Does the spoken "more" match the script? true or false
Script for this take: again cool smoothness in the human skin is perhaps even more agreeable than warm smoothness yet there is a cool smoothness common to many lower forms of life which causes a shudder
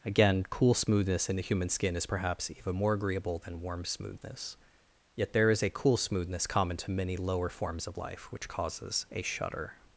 true